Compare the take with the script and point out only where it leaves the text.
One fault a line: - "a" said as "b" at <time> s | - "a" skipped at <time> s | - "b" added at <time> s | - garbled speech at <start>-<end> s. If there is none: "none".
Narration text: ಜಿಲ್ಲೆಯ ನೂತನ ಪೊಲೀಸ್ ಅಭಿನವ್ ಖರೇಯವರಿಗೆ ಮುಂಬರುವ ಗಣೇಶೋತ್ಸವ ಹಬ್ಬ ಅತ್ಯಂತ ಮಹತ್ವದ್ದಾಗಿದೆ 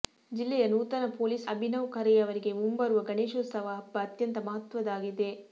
none